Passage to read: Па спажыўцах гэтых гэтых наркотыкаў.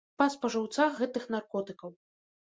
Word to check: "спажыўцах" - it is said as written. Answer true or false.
true